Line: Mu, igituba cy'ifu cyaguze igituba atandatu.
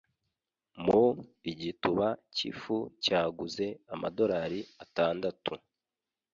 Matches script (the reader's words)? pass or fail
fail